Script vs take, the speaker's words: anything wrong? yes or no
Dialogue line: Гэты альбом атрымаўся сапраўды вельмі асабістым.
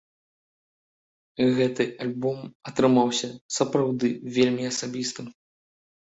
no